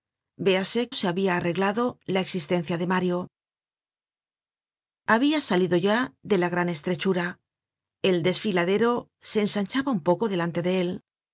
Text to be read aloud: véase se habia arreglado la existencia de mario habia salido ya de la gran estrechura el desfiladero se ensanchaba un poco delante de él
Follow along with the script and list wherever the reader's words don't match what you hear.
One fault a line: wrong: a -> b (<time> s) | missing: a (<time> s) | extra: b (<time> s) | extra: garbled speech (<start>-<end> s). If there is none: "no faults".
no faults